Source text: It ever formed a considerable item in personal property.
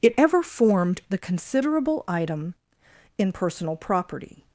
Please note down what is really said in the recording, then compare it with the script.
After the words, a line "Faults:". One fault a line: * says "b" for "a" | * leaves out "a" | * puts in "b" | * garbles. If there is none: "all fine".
It ever formed the considerable item in personal property.
Faults:
* says "the" for "a"